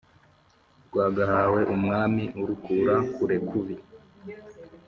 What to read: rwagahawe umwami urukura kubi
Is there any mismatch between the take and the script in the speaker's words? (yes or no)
yes